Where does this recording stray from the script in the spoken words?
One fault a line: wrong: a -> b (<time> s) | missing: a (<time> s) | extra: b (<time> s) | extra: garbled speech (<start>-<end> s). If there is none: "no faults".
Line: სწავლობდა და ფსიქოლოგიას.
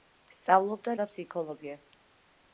no faults